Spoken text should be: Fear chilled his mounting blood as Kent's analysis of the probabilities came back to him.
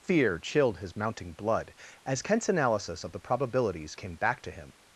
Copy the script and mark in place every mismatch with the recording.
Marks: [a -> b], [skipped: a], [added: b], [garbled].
Fear chilled his mounting blood as Kent's analysis of the probabilities came back to him.